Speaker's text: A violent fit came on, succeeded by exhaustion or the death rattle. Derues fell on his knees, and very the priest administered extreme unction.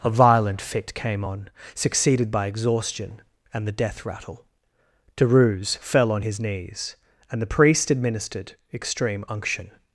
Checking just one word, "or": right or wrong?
wrong